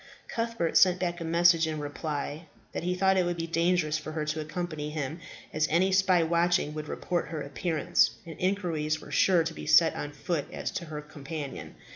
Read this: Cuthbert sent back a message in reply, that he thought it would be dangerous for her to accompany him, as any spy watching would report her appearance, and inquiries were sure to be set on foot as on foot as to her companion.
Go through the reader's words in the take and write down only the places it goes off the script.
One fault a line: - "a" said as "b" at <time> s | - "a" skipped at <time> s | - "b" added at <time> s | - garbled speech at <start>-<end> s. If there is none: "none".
- "on foot as" skipped at 10.7 s